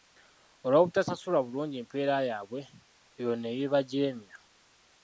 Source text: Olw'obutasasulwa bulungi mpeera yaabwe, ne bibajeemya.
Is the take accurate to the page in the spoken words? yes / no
no